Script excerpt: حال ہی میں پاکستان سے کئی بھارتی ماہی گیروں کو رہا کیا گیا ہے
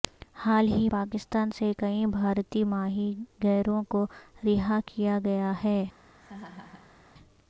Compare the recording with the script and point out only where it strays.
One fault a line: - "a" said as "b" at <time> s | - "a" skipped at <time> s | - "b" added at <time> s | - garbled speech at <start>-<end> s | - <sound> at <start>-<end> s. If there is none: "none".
- "میں" skipped at 0.9 s
- laugh at 6.2-7.0 s